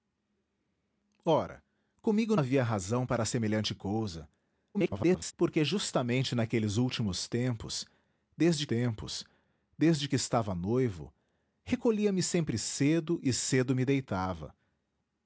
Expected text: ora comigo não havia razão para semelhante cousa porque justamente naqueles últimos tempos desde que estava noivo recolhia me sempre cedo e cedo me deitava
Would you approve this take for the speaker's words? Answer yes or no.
no